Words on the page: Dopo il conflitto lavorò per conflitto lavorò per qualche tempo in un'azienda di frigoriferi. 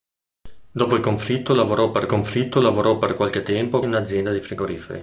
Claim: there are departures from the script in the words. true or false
false